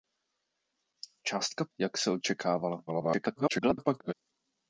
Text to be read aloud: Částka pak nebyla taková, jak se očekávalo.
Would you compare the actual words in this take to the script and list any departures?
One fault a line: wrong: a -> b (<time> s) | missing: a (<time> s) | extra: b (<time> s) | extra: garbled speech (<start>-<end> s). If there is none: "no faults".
missing: pak nebyla taková (1.6 s)
extra: garbled speech (2.9-4.1 s)